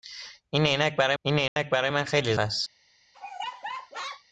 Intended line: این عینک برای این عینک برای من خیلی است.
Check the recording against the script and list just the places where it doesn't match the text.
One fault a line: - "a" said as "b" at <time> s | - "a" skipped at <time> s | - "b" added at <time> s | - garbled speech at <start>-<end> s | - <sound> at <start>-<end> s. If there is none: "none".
- dropout at 1.5-1.6 s
- laugh at 3.1-4.2 s